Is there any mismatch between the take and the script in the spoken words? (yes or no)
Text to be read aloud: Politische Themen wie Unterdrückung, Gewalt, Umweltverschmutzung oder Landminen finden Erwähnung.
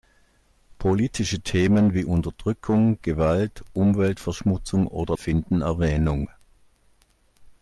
yes